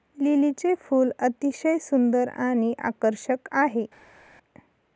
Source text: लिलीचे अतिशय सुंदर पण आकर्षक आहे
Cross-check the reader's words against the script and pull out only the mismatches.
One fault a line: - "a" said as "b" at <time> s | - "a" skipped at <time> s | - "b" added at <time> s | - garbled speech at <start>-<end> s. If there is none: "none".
- "फूल" added at 0.8 s
- "पण" said as "आणि" at 2.4 s